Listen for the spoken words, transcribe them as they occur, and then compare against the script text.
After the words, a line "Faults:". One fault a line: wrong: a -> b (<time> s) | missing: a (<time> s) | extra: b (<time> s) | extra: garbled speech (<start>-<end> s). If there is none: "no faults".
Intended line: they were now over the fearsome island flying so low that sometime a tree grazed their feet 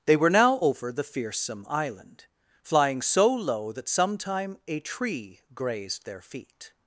they were now over the fearsome island flying so low that sometime a tree grazed their feet
Faults:
no faults